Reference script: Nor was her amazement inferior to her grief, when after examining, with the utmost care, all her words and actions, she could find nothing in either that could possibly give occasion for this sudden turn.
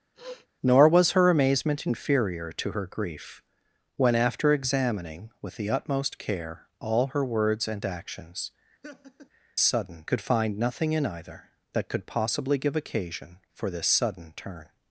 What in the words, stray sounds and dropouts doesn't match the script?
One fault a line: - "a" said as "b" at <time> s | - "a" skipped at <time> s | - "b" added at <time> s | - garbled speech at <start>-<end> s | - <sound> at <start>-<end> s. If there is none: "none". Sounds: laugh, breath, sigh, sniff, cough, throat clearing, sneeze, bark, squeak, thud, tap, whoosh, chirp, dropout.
- sniff at 0.1-0.5 s
- laugh at 8.8-9.3 s
- "she" said as "sudden" at 9.6 s